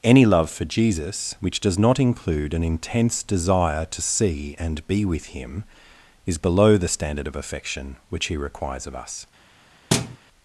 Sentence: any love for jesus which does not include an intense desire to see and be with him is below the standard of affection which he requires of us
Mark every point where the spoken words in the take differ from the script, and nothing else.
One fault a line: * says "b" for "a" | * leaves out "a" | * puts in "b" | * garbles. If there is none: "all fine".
all fine